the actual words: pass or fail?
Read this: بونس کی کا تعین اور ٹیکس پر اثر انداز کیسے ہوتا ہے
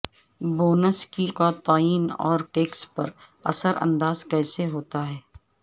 pass